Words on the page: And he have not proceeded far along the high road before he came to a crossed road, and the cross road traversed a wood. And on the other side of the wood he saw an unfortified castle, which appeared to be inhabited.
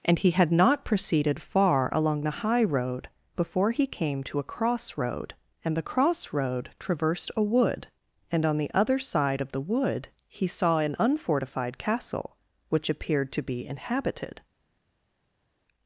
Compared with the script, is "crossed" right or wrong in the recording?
wrong